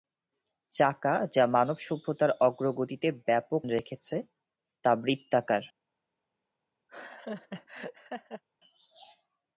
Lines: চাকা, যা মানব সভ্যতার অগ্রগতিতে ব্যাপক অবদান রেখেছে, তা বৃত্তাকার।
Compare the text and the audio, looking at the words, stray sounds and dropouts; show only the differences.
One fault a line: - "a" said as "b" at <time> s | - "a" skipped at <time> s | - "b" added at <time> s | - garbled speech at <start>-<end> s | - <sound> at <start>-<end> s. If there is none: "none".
- "অবদান" skipped at 3.6 s
- laugh at 6.9-8.4 s